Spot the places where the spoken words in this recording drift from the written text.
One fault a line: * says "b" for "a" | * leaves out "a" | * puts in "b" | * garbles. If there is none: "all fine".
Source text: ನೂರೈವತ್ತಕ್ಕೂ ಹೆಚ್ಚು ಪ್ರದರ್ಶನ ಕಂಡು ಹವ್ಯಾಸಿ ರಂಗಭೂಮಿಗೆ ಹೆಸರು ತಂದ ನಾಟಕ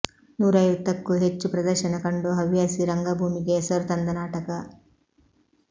all fine